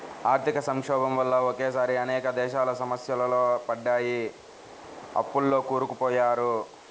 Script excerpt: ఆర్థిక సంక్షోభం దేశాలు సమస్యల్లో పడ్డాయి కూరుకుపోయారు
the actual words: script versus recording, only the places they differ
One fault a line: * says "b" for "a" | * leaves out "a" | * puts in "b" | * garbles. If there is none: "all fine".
* puts in "వల్ల ఒకేసారి అనేక"
* puts in "అప్పుల్లో"